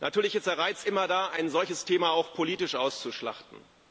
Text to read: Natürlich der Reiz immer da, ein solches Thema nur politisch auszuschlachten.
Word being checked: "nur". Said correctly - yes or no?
no